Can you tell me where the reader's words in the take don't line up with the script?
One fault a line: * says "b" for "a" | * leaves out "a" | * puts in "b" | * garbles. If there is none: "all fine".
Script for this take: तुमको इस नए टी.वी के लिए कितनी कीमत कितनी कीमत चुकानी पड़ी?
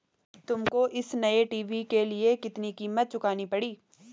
* leaves out "कितनी कीमत"